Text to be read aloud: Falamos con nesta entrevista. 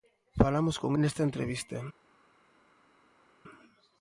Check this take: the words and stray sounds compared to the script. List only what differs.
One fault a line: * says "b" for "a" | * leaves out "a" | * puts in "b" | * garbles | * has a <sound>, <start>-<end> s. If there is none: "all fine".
all fine